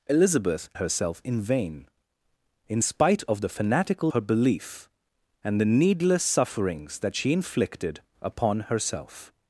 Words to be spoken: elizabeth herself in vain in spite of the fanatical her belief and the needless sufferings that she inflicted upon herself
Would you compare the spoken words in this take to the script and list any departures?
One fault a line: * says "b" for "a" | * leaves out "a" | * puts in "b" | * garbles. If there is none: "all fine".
all fine